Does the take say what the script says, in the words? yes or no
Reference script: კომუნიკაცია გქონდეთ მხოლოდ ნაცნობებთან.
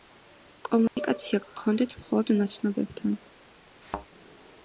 yes